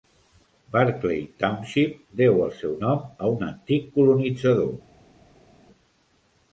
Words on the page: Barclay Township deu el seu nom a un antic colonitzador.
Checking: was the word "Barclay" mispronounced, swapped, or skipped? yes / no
no